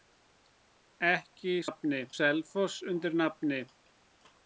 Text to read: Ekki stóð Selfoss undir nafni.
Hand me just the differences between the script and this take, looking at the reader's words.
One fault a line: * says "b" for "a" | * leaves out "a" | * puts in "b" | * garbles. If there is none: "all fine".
* says "nafni" for "stóð"